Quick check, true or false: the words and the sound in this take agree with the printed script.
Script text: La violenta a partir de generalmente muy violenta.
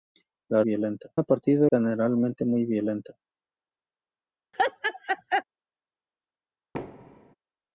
false